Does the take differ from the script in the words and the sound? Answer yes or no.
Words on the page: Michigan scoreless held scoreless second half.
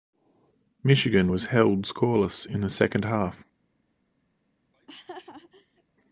yes